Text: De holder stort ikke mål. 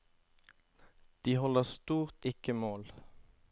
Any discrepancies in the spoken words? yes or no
no